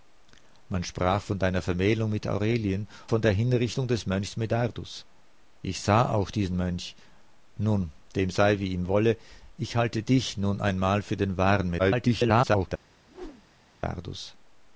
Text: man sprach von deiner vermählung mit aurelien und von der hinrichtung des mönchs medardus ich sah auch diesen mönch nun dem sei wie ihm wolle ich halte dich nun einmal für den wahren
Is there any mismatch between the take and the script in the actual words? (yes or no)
yes